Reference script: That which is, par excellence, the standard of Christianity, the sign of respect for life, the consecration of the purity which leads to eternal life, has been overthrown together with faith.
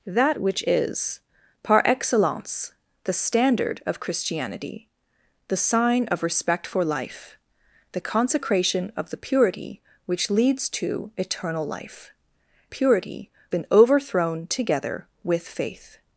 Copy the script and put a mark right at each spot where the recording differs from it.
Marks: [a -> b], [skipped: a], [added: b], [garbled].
That which is, par excellence, the standard of Christianity, the sign of respect for life, the consecration of the purity which leads to eternal life, [has -> purity] been overthrown together with faith.